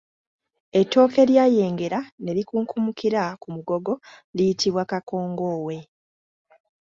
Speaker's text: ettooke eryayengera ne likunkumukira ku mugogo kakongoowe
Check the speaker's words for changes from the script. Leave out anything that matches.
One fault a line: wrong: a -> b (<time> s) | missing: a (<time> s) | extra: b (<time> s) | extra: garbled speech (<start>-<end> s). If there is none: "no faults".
extra: liyitibwa (4.3 s)